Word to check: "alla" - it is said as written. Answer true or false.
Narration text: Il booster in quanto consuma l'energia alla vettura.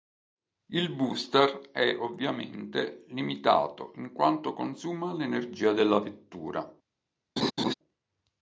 false